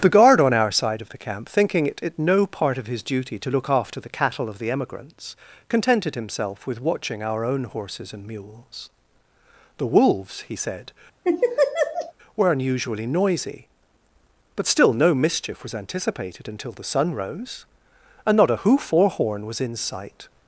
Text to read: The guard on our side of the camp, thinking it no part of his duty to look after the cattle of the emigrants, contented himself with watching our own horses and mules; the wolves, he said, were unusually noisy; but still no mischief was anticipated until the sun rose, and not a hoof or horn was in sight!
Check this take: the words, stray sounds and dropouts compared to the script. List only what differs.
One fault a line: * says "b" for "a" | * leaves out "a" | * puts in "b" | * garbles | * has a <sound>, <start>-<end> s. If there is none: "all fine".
* puts in "it"
* has a laugh, 11.2-12.1 s